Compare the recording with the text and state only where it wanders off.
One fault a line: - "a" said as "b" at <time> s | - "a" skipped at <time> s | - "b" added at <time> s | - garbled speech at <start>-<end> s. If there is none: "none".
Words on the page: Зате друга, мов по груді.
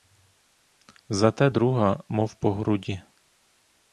none